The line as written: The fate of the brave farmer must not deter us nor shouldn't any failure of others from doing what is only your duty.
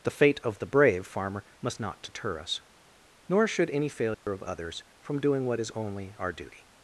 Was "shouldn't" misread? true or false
true